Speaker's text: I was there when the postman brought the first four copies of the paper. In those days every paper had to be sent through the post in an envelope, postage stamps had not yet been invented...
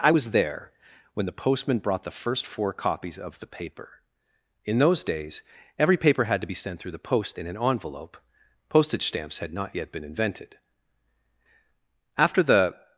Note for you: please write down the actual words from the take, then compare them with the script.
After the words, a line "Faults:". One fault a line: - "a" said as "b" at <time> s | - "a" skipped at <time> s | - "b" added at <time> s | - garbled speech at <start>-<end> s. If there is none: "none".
I was there when the postman brought the first four copies of the paper. In those days every paper had to be sent through the post in an envelope, postage stamps had not yet been invented... After the
Faults:
- "After the" added at 12.2 s